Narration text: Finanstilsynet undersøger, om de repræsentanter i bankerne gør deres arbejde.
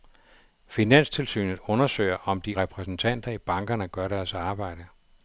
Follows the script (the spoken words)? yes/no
yes